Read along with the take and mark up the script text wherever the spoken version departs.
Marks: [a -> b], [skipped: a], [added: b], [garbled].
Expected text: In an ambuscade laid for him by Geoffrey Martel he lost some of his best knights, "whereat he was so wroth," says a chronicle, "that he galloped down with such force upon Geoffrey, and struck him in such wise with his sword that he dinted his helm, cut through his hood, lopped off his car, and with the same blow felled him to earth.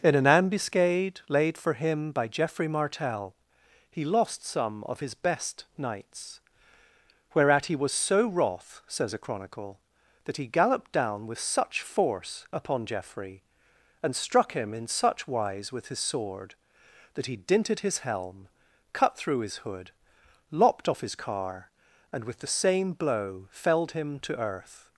In an ambuscade laid for him by Geoffrey Martel he lost some of his best knights, "whereat he was so wroth," says a chronicle, "that he galloped down with such force upon Geoffrey, and struck him in such wise with his sword that he dinted his helm, cut through his hood, lopped off his car, and with the same blow felled him to earth.